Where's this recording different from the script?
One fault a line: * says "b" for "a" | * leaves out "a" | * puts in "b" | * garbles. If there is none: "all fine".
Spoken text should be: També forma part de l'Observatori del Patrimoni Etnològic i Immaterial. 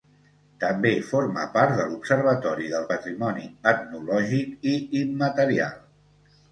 all fine